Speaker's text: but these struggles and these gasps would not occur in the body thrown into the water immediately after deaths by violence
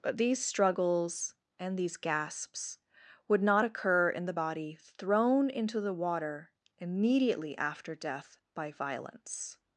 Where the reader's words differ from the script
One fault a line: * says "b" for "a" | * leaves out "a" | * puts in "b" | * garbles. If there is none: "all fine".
* says "death" for "deaths"